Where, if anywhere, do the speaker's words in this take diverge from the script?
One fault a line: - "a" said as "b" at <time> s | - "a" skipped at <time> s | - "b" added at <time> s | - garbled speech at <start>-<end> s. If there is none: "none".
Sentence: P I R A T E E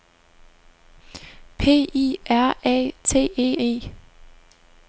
none